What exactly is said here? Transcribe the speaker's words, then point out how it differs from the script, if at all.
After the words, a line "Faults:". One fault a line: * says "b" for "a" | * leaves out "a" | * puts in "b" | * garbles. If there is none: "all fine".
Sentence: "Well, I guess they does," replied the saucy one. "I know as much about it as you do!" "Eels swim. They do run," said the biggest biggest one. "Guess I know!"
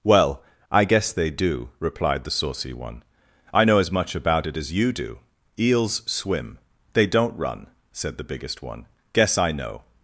"Well, I guess they do," replied the saucy one. "I know as much about it as you do!" "Eels swim. They don't run," said the biggest one. "Guess I know!"
Faults:
* says "do" for "does"
* says "don't" for "do"
* leaves out "biggest"